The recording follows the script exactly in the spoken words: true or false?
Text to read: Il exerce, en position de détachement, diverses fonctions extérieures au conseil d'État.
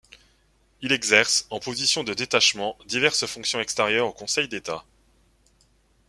true